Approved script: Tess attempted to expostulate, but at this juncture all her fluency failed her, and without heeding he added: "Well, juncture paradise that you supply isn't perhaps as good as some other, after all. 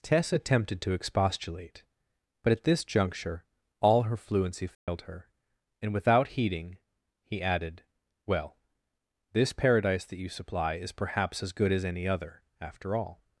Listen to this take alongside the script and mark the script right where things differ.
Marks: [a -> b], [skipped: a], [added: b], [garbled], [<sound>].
Tess attempted to expostulate, but at this juncture all her fluency failed [dropout] her, and without heeding he added: "Well, [juncture -> this] paradise that you supply [isn't -> is] perhaps as good as [some -> any] other, after all.